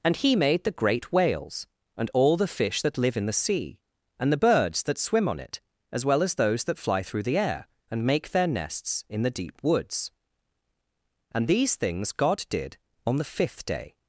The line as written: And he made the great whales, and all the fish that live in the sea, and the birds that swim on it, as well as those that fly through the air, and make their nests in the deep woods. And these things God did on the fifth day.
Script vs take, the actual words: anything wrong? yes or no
no